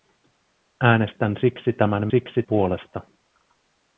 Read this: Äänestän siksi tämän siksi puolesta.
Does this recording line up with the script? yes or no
yes